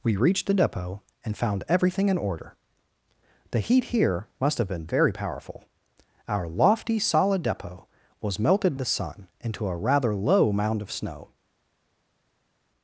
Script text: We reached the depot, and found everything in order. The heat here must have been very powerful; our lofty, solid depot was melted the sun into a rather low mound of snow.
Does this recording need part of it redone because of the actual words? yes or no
no